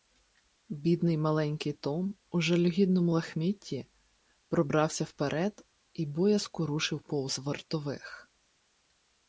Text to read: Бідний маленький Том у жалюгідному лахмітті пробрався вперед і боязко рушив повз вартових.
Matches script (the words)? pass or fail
pass